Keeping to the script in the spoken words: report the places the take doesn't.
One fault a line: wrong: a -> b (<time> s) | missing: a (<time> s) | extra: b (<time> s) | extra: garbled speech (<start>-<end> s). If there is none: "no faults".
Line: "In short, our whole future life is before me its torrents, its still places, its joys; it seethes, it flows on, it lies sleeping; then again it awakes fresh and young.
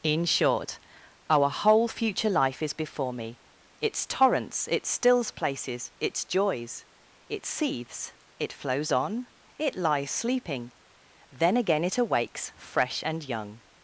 wrong: still -> stills (4.9 s)